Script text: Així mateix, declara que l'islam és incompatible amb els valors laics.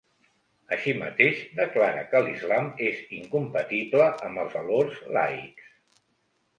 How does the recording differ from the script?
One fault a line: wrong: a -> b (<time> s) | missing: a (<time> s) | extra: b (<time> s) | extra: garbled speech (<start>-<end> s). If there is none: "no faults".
no faults